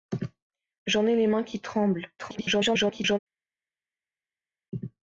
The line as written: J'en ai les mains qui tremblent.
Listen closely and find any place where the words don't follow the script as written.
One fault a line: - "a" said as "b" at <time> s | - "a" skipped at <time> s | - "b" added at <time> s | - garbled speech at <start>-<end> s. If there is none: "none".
- garbled speech at 2.2-3.2 s